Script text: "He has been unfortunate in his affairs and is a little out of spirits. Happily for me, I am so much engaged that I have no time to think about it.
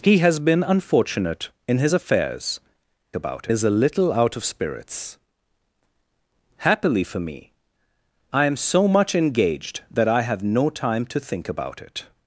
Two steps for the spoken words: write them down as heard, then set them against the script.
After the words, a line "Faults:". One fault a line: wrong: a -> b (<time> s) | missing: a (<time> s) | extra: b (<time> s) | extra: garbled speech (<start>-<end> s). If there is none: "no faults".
"He has been unfortunate in his affairs about is a little out of spirits. Happily for me, I am so much engaged that I have no time to think about it.
Faults:
wrong: and -> about (3.1 s)